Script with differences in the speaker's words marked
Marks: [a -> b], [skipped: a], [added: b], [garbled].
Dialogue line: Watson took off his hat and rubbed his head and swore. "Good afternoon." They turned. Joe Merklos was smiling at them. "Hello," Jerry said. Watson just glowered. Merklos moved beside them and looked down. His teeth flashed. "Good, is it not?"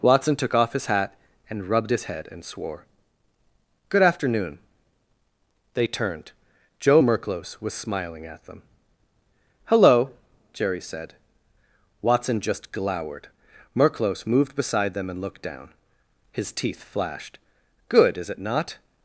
Watson took off his hat and rubbed his head and swore. "Good afternoon." They turned. Joe Merklos was smiling at them. "Hello," Jerry said. Watson just glowered. Merklos moved beside them and looked down. His teeth flashed. "Good, is it not?"